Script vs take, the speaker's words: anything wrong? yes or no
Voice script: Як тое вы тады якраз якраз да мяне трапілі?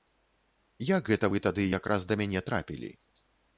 yes